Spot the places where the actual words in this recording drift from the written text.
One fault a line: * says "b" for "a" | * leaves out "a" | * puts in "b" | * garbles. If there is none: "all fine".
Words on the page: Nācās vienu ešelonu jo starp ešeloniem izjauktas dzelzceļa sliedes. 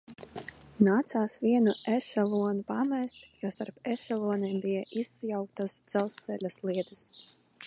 * puts in "pamest"
* puts in "bija"